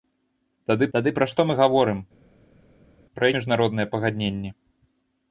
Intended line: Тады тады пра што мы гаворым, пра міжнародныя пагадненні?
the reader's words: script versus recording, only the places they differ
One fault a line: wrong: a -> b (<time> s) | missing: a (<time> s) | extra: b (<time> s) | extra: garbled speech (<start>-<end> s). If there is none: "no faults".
no faults